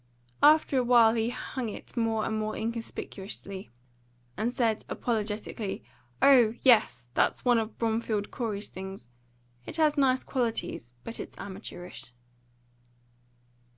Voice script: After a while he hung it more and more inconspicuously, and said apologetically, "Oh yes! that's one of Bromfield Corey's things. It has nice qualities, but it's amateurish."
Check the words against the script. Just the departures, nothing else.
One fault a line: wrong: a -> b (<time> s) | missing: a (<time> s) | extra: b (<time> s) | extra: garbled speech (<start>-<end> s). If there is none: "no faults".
no faults